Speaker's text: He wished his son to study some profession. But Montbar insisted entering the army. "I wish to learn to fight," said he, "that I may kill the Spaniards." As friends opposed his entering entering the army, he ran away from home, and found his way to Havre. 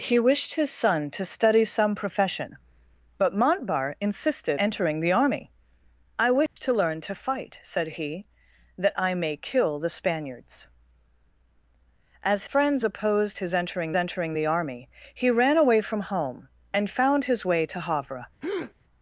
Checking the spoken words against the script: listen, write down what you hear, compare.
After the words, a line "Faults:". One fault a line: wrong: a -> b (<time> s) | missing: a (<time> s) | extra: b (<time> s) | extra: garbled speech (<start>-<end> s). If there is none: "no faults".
He wished his son to study some profession. But Montbar insisted entering the army. "I wish to learn to fight," said he, "that I may kill the Spaniards." As friends opposed his entering entering the army, he ran away from home, and found his way to Havre.
Faults:
no faults